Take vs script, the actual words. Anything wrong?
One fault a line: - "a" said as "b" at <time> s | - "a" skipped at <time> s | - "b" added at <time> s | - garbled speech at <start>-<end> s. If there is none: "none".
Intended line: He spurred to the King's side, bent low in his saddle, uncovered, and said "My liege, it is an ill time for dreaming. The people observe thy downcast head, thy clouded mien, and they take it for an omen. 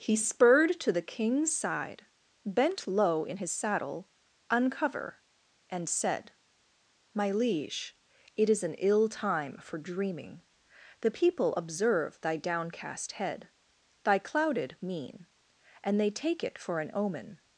- "uncovered" said as "uncover" at 4.5 s